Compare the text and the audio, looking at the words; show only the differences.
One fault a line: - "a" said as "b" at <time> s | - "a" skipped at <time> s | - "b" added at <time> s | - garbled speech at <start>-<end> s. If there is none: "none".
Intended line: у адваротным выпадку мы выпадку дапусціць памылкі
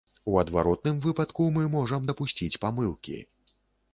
- "выпадку" said as "можам" at 1.8 s